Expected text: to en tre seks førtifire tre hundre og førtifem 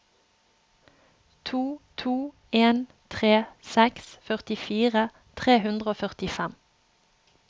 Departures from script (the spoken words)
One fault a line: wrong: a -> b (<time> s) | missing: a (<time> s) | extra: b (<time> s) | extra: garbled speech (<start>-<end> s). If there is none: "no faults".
extra: to (2.0 s)